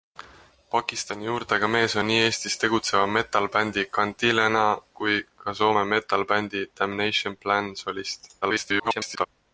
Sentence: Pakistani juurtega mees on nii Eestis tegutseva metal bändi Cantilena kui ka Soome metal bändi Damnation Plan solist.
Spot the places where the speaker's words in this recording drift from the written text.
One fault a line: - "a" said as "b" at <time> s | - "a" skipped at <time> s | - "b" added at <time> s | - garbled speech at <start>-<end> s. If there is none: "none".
- garbled speech at 8.4-9.3 s